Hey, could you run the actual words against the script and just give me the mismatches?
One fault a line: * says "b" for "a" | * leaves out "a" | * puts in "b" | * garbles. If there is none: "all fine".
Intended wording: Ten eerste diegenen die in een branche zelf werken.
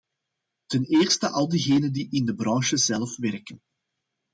* puts in "al"
* says "de" for "een"